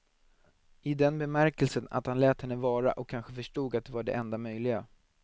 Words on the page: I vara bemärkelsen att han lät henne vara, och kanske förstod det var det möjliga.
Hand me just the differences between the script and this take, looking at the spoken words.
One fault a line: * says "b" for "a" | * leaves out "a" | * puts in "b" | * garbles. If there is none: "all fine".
* says "den" for "vara"
* puts in "att"
* puts in "enda"